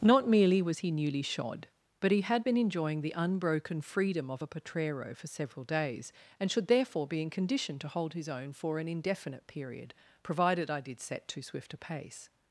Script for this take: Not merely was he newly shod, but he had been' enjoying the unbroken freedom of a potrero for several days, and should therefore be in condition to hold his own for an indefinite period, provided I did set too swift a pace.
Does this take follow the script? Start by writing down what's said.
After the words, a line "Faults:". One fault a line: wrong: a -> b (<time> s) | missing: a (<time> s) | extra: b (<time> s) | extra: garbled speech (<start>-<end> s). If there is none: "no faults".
Not merely was he newly shod, but he had been' enjoying the unbroken freedom of a potrero for several days, and should therefore be in condition to hold his own for an indefinite period, provided I did set too swift a pace.
Faults:
no faults